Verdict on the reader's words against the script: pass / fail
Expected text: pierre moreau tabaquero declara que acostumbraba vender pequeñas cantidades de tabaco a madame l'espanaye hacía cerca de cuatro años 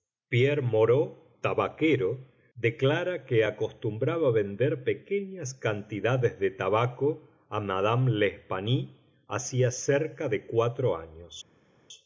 pass